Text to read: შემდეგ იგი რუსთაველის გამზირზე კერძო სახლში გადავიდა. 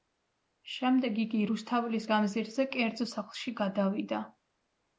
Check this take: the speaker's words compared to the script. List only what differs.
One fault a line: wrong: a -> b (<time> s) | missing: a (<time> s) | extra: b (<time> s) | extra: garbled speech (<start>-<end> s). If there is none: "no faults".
no faults